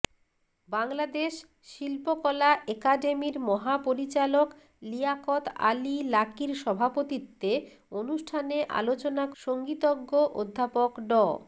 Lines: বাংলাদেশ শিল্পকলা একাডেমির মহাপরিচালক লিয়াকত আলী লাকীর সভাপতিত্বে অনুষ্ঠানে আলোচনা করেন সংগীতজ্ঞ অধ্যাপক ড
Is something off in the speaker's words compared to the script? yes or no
yes